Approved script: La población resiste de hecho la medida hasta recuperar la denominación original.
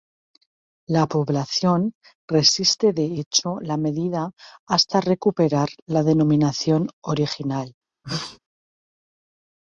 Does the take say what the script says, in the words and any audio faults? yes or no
no